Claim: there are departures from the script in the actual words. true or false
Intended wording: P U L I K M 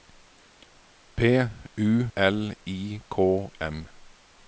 false